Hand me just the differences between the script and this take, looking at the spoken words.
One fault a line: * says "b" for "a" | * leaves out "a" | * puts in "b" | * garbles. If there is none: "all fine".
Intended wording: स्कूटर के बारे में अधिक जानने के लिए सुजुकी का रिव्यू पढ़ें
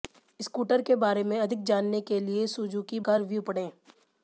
all fine